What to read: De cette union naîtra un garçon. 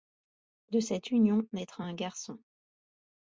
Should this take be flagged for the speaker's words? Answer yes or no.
no